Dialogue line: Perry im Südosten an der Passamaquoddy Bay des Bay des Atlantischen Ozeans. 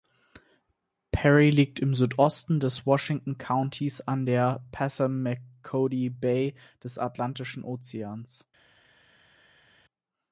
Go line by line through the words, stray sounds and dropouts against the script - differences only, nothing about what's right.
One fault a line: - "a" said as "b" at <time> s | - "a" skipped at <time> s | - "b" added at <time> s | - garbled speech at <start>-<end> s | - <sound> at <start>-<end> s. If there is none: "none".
- "liegt" added at 1.5 s
- "des Washington Countys" added at 2.6 s
- "Bay des" skipped at 7.0 s